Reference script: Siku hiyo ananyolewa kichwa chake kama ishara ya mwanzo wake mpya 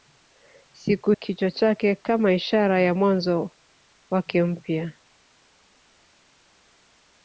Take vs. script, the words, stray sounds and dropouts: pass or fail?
fail